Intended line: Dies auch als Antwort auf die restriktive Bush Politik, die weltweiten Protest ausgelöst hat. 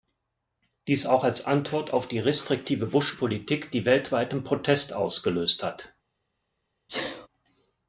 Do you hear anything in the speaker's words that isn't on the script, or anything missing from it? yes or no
no